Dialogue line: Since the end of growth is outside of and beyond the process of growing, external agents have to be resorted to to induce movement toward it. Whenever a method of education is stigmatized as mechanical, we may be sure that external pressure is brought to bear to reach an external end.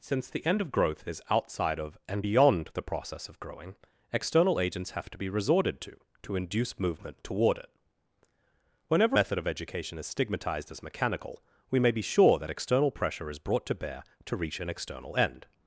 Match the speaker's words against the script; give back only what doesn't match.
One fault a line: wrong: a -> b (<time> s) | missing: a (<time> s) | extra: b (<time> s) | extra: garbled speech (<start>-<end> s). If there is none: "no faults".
missing: a (9.2 s)